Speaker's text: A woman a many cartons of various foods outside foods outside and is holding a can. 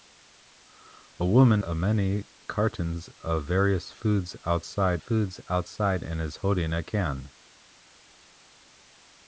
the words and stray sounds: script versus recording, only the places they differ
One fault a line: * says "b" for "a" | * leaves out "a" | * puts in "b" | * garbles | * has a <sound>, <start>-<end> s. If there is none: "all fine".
all fine